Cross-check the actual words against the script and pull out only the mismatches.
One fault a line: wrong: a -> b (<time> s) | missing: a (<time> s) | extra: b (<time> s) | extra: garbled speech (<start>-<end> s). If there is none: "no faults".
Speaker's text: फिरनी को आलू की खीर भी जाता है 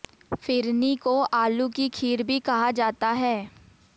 extra: कहा (2.4 s)